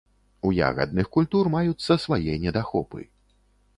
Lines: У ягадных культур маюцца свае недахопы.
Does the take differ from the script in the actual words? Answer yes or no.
no